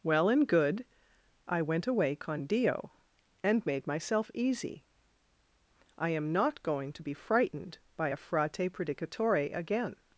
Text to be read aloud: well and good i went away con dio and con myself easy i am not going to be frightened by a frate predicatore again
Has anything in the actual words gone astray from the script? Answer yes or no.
yes